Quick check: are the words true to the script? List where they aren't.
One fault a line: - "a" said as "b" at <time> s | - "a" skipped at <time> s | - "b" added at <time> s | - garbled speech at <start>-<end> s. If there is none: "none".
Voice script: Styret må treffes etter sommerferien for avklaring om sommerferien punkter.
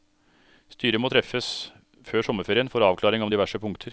- "etter" said as "før" at 2.1 s
- "sommerferien" said as "diverse" at 3.3 s